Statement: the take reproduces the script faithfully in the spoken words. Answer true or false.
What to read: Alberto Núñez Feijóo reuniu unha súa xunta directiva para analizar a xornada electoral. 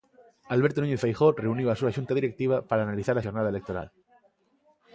false